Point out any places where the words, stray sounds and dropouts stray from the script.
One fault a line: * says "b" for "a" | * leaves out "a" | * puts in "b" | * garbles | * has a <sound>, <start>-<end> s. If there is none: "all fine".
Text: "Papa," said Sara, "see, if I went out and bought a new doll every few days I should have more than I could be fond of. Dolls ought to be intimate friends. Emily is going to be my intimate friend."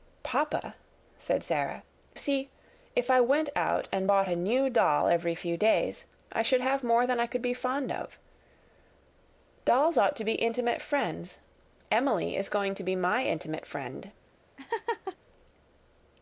* has a laugh, 14.6-15.2 s